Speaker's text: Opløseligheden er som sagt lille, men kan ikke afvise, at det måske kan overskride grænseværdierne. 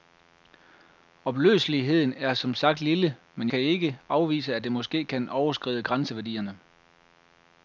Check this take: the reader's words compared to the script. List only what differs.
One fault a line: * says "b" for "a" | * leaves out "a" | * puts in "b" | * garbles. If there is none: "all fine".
all fine